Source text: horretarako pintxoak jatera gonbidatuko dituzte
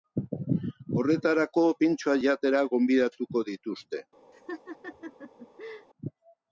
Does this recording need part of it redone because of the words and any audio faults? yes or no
yes